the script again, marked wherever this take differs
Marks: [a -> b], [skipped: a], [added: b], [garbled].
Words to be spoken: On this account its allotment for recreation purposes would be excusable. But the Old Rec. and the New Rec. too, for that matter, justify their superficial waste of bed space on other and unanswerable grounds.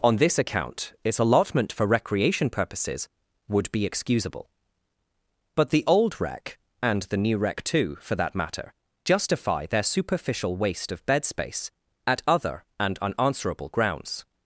On this account its allotment for recreation purposes would be excusable. But the Old Rec. and the New Rec. too, for that matter, justify their superficial waste of bed space [on -> at] other and unanswerable grounds.